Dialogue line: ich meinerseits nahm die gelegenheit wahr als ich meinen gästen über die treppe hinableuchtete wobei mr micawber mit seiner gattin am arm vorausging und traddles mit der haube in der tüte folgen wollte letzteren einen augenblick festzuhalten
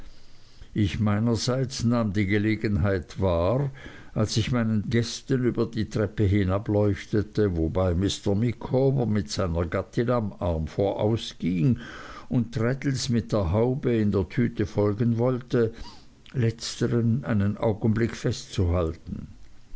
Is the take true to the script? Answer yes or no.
yes